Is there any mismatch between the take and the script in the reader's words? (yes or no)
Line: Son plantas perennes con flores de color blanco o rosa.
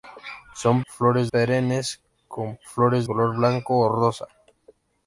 yes